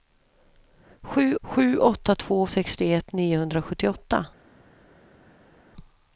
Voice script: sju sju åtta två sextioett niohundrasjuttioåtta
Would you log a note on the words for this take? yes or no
no